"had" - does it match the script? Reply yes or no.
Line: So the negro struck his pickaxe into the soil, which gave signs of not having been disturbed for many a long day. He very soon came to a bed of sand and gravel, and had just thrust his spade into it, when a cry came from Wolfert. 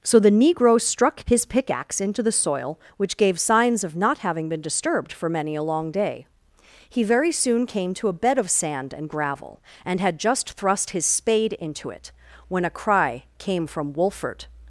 yes